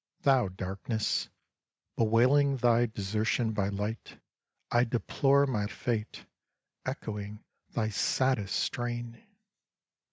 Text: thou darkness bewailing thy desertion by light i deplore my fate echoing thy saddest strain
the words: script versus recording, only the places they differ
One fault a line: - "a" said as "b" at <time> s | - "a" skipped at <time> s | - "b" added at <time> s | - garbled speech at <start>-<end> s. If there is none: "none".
none